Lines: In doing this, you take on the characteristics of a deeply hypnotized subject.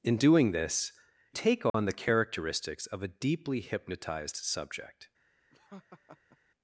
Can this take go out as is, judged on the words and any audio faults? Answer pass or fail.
fail